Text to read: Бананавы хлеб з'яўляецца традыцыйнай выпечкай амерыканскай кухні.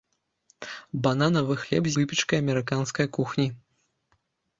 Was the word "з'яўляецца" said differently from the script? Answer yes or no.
yes